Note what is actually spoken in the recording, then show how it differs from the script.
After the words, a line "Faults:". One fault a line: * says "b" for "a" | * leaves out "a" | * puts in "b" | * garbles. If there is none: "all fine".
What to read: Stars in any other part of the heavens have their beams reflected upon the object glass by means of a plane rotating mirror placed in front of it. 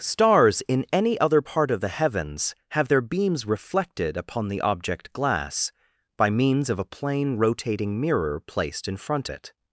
Stars in any other part of the heavens have their beams reflected upon the object glass by means of a plane rotating mirror placed in front it.
Faults:
* leaves out "of"